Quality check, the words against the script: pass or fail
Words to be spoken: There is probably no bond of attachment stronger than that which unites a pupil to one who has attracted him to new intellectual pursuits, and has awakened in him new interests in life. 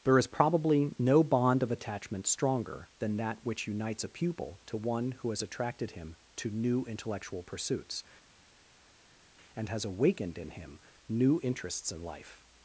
pass